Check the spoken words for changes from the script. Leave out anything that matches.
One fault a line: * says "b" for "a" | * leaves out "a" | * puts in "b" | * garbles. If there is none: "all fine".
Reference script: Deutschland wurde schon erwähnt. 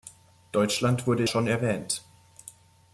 all fine